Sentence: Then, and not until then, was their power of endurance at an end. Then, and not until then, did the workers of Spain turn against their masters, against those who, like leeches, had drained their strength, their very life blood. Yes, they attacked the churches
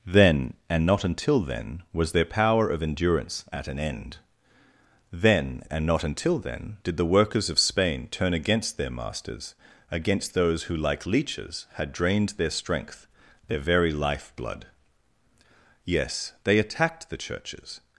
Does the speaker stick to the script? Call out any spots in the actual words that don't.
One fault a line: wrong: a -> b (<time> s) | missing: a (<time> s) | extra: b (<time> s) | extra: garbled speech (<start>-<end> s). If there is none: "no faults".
no faults